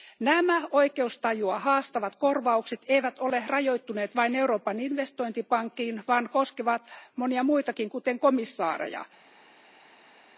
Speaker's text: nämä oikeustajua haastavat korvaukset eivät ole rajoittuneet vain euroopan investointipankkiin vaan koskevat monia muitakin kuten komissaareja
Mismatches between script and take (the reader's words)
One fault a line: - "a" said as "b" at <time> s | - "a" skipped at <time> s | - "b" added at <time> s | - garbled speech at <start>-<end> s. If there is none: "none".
none